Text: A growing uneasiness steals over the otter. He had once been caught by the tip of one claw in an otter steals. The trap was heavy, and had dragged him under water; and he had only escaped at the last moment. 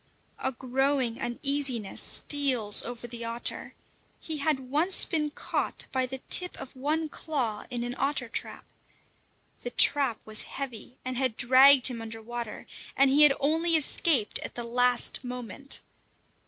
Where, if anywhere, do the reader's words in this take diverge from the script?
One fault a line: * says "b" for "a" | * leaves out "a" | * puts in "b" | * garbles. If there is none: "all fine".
* says "trap" for "steals"